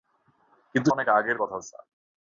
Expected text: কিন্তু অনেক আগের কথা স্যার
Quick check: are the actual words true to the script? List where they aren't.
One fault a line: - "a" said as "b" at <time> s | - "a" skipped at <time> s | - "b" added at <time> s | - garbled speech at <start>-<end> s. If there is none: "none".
none